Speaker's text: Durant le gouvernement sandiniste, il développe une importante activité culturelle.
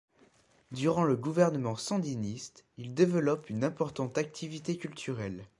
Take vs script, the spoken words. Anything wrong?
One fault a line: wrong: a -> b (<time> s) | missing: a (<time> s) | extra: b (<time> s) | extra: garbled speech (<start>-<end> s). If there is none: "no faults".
no faults